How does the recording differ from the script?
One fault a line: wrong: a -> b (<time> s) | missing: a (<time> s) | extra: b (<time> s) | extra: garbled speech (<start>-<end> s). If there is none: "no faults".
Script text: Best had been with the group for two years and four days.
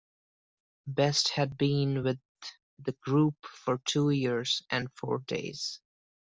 no faults